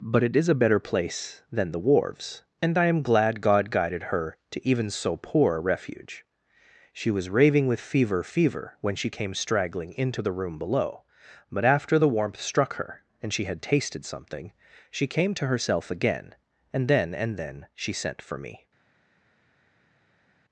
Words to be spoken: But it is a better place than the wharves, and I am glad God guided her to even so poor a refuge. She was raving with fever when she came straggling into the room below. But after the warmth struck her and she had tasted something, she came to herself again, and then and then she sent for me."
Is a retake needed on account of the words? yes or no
yes